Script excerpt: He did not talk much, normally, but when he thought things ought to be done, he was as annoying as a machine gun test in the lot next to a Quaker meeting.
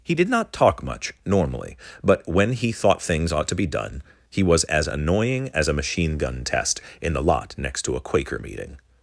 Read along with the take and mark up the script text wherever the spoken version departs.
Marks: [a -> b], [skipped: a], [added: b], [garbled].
He did not talk much, normally, but when he thought things ought to be done, he was as annoying as a machine gun test in the lot next to a Quaker meeting.